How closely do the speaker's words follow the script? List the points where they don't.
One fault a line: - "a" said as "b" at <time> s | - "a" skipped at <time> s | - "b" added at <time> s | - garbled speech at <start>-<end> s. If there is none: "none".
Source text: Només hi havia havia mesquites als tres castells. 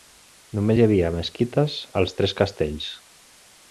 - "havia" skipped at 1.1 s